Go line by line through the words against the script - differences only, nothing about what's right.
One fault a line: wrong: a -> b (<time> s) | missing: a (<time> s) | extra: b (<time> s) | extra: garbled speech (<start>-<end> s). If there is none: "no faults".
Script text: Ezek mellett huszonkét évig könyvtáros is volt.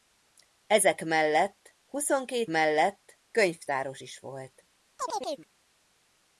wrong: évig -> mellett (2.5 s)